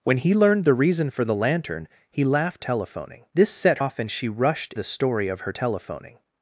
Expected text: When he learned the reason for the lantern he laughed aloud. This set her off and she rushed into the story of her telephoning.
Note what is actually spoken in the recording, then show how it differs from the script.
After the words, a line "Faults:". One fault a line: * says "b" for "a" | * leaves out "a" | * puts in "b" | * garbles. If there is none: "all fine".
When he learned the reason for the lantern he laughed telephoning. This set off and she rushed the story of her telephoning.
Faults:
* says "telephoning" for "aloud"
* leaves out "her"
* leaves out "into"